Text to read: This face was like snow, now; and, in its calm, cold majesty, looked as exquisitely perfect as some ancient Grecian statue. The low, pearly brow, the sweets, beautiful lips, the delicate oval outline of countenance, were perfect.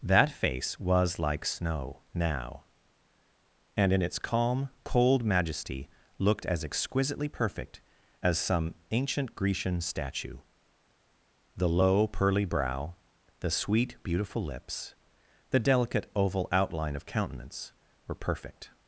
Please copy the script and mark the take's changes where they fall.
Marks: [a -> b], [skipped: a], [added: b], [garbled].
[This -> That] face was like snow, now; and, in its calm, cold majesty, looked as exquisitely perfect as some ancient Grecian statue. The low, pearly brow, the [sweets, -> sweet] beautiful lips, the delicate oval outline of countenance, were perfect.